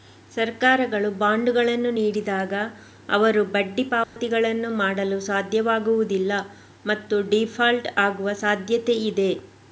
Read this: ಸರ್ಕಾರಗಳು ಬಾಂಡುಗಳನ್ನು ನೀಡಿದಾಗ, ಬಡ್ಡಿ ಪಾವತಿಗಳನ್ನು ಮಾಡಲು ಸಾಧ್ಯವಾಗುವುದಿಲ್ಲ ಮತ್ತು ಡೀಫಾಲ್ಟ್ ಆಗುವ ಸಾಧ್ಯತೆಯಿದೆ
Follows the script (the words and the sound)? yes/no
no